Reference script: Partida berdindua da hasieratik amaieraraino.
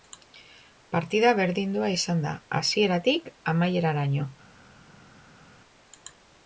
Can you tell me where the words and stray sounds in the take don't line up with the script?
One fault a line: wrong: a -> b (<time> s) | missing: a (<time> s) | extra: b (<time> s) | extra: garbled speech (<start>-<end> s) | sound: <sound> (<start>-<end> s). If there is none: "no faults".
extra: izan (2.0 s)